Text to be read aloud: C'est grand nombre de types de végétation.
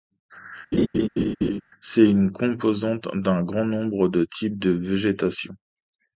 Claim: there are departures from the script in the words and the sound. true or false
true